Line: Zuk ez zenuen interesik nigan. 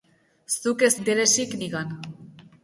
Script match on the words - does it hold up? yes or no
no